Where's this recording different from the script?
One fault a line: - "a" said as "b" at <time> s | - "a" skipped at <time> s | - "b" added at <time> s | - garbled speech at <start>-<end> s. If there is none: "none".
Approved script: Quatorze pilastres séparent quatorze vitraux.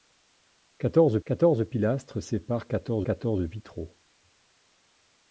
- "quatorze" added at 1.3 s
- "quatorze" added at 3.0 s